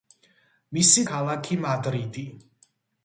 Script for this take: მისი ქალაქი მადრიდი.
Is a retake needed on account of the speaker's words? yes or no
no